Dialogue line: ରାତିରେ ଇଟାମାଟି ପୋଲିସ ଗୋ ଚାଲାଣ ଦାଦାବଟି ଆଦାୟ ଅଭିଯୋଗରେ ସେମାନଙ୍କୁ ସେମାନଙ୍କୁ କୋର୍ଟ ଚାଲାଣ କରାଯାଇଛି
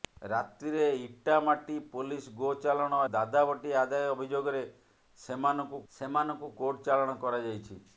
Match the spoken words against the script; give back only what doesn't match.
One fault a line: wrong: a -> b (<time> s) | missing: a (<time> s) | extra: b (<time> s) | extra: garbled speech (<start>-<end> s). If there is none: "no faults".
no faults